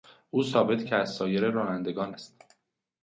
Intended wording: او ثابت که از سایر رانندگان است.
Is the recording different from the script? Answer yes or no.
no